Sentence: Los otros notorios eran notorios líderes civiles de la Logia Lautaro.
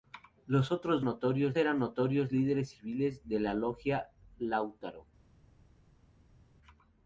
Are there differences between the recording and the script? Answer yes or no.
no